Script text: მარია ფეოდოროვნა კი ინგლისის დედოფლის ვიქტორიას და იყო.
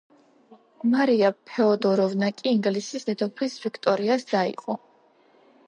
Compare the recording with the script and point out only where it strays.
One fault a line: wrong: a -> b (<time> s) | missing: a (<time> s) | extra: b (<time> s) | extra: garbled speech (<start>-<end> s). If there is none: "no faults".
no faults